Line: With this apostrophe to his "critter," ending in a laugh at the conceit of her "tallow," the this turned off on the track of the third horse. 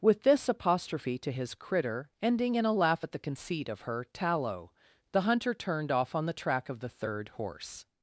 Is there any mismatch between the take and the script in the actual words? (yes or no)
yes